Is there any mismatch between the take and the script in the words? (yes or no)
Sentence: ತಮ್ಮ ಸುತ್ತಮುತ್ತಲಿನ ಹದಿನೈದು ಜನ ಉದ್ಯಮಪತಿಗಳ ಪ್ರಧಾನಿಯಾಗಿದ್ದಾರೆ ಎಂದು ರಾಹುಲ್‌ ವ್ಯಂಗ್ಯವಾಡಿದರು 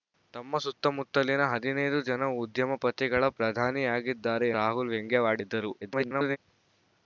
yes